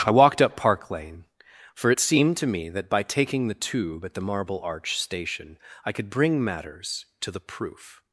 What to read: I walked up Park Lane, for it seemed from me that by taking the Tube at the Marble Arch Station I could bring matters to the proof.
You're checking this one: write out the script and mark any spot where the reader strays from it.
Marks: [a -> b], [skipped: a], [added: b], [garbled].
I walked up Park Lane, for it seemed [from -> to] me that by taking the Tube at the Marble Arch Station I could bring matters to the proof.